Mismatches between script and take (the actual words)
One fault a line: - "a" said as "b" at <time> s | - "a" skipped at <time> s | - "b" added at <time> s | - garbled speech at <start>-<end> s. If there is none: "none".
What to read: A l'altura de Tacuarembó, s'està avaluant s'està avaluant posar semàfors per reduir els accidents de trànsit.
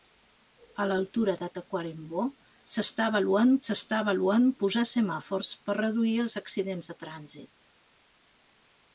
none